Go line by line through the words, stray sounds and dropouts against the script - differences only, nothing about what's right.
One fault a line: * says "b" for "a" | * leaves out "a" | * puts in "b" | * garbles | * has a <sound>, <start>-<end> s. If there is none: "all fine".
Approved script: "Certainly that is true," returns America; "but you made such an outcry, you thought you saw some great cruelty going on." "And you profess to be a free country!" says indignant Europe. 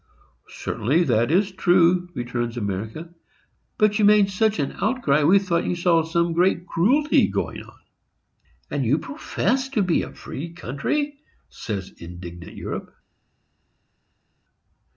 * says "we" for "you"